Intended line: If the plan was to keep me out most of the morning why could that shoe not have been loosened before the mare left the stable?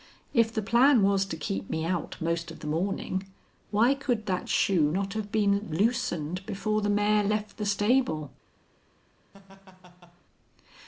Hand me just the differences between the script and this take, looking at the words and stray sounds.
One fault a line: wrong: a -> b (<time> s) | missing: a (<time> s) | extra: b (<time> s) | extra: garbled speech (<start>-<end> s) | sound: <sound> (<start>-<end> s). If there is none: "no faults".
sound: laugh (9.3-10.2 s)